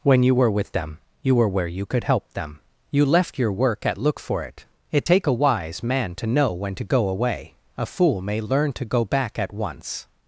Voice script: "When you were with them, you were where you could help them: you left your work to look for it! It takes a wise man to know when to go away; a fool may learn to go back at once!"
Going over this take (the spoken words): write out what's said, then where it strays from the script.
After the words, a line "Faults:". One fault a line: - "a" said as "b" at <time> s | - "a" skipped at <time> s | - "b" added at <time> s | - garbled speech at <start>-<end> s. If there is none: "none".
"When you were with them, you were where you could help them: you left your work at look for it! It take a wise man to know when to go away; a fool may learn to go back at once!"
Faults:
- "to" said as "at" at 3.9 s
- "takes" said as "take" at 5.0 s